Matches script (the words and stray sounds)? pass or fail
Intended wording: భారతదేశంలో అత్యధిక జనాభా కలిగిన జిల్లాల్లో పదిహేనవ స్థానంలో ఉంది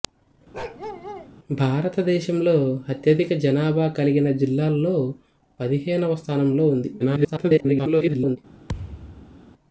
fail